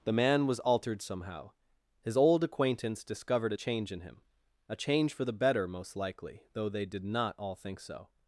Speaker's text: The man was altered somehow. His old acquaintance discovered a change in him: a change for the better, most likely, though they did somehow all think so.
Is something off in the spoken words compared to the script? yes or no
yes